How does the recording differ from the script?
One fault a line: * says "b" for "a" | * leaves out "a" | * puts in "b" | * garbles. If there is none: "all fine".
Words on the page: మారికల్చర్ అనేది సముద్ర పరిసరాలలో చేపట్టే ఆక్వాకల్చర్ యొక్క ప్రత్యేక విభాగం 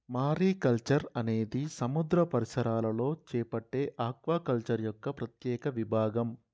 all fine